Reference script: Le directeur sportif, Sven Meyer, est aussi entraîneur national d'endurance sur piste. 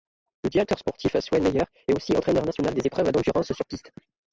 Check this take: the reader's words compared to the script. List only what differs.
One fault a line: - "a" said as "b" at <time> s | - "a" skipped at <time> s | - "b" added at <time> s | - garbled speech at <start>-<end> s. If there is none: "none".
- "des épreuves" added at 2.7 s